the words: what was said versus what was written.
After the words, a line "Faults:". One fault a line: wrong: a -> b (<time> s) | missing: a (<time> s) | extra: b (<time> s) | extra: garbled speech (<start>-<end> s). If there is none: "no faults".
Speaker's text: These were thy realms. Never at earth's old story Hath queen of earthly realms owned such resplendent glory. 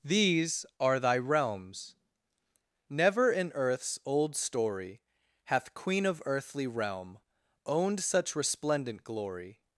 These are thy realms. Never in earth's old story Hath queen of earthly realm owned such resplendent glory.
Faults:
wrong: were -> are (0.8 s)
wrong: at -> in (3.3 s)
wrong: realms -> realm (6.7 s)